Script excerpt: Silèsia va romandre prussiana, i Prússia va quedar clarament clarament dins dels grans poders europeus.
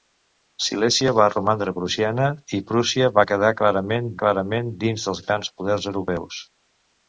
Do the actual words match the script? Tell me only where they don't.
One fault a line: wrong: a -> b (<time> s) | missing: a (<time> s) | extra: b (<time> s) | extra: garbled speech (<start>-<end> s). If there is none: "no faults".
no faults